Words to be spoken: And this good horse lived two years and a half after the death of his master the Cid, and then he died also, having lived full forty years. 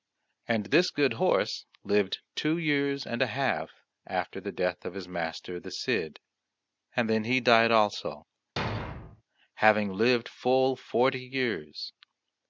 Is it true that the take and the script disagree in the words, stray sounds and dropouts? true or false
true